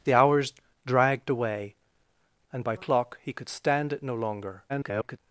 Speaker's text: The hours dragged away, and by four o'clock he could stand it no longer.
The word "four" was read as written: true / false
false